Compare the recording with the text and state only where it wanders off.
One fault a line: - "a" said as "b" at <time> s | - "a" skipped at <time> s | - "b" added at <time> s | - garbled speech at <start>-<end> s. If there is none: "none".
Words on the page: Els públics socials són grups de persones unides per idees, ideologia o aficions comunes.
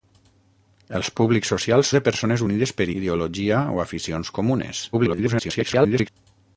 - "són grups" skipped at 1.9 s
- "idees" skipped at 2.9 s
- garbled speech at 4.9-6.1 s